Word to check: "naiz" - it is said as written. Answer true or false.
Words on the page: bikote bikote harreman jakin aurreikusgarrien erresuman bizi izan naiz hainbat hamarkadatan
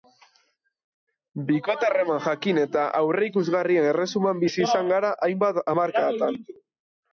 false